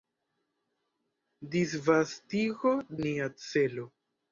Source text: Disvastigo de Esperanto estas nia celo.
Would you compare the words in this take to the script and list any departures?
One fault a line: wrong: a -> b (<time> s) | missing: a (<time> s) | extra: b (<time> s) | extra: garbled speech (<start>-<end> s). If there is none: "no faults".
missing: de Esperanto estas (2.7 s)